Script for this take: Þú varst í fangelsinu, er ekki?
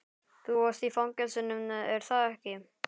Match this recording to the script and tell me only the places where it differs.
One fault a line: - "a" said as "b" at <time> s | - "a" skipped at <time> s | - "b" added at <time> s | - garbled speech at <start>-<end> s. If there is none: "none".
- "það" added at 2.1 s